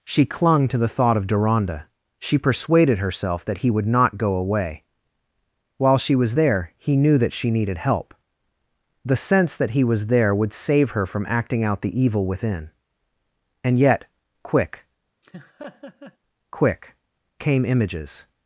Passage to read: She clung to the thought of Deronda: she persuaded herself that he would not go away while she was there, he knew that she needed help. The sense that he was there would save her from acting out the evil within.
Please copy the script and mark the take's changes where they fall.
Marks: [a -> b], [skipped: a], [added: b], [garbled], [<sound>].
She clung to the thought of Deronda: she persuaded herself that he would not go away while she was there, he knew that she needed help. The sense that he was there would save her from acting out the evil within. [added: And yet quick quick came images] [laugh]